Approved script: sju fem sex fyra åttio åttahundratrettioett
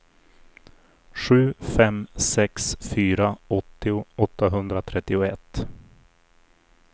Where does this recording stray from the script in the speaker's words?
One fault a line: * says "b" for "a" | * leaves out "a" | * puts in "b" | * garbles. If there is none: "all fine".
all fine